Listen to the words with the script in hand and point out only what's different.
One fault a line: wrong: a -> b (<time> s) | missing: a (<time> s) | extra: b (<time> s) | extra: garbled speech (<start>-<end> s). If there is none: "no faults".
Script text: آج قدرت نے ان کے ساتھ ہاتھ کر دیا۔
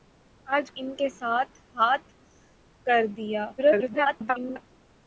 missing: قدرت نے (0.7 s)
extra: garbled speech (3.6-4.7 s)